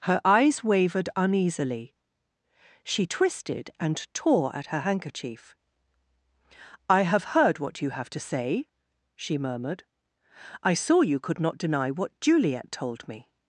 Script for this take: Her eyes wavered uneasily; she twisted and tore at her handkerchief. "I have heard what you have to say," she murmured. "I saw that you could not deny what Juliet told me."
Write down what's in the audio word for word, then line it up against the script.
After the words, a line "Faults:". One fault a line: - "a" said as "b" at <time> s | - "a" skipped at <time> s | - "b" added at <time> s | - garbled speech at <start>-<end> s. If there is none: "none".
Her eyes wavered uneasily; she twisted and tore at her handkerchief. "I have heard what you have to say," she murmured. "I saw you could not deny what Juliet told me."
Faults:
- "that" skipped at 11.0 s